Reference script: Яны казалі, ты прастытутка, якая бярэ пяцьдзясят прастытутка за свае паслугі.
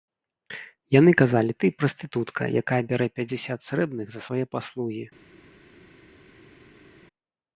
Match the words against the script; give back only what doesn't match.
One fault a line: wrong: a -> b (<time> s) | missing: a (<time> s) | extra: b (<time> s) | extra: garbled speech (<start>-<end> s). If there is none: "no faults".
wrong: прастытутка -> срэбных (3.7 s)